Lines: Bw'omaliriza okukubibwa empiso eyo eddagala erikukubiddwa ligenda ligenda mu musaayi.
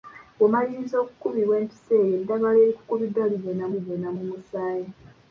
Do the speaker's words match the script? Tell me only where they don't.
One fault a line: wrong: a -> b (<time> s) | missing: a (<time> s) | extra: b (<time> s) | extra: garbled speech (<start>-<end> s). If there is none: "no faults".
no faults